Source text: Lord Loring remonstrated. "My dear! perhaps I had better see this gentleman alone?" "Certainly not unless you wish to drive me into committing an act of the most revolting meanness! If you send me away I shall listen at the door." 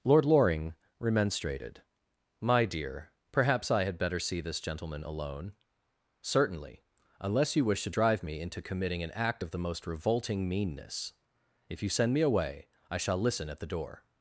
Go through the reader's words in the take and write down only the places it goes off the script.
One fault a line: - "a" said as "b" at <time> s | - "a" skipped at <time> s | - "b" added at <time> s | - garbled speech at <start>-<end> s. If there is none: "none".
- "not" skipped at 6.8 s